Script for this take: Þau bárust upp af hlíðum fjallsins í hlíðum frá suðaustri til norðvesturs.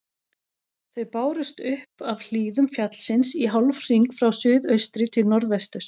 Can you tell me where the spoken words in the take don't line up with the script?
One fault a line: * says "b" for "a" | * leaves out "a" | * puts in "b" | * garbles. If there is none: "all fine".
* says "hálfhring" for "hlíðum"